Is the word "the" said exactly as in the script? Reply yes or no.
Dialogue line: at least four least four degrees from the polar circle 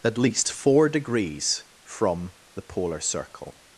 yes